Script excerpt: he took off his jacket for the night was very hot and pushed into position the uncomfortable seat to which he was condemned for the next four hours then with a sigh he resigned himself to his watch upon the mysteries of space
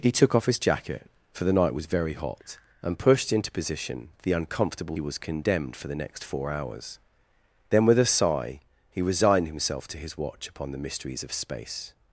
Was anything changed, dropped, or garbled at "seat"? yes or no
yes